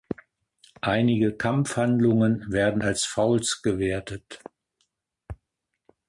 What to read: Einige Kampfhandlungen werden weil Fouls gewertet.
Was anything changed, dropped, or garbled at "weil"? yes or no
yes